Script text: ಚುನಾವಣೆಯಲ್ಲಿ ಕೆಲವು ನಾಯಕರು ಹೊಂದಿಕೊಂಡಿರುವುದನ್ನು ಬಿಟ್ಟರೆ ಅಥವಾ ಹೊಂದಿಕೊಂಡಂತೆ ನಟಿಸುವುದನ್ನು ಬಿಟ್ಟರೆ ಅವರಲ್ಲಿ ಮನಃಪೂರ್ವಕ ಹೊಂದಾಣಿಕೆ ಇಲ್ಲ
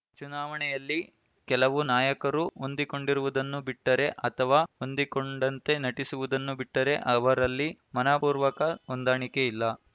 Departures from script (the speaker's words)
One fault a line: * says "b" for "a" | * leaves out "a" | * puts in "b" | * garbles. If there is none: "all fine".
all fine